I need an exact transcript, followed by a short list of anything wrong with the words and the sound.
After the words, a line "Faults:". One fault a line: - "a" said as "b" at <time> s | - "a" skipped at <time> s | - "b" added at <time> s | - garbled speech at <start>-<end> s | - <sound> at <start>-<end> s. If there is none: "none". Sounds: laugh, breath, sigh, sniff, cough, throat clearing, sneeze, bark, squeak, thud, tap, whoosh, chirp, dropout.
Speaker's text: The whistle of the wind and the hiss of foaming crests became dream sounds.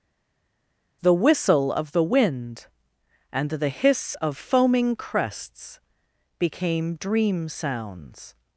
The whistle of the wind and the hiss of foaming crests became dream sounds.
Faults:
none